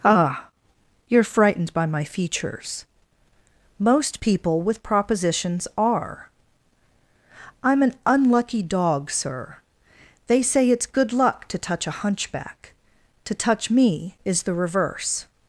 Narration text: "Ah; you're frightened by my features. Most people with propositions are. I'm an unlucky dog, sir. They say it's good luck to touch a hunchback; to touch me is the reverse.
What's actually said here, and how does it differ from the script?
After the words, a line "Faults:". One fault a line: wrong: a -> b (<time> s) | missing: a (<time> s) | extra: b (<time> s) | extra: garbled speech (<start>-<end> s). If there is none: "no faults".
"Ah; you're frightened by my features. Most people with propositions are. I'm an unlucky dog, sir. They say it's good luck to touch a hunchback; to touch me is the reverse.
Faults:
no faults